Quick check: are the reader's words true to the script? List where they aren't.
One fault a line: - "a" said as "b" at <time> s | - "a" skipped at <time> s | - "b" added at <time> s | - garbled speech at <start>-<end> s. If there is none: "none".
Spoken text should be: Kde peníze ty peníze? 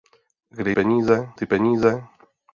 none